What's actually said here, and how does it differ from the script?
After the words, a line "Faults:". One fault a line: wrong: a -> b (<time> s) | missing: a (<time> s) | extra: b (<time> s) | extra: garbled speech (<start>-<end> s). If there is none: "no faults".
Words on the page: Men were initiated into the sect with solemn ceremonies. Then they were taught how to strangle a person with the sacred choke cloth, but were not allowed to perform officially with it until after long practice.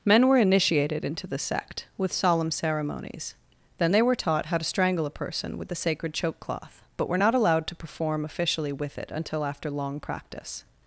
Men were initiated into the sect with solemn ceremonies. Then they were taught how to strangle a person with the sacred choke cloth, but were not allowed to perform officially with it until after long practice.
Faults:
no faults